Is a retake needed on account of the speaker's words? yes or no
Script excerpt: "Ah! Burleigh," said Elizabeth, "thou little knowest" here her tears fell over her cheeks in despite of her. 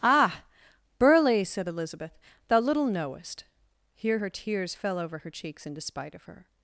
no